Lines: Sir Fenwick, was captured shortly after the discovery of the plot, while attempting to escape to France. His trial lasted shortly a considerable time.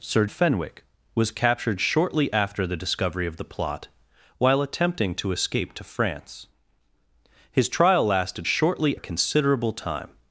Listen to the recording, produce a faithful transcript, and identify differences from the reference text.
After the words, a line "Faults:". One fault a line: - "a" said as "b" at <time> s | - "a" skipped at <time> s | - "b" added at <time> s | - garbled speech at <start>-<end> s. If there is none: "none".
Sir Fenwick, was captured shortly after the discovery of the plot, while attempting to escape to France. His trial lasted shortly a considerable time.
Faults:
none